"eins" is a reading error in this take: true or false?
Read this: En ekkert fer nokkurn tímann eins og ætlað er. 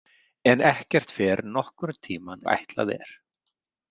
true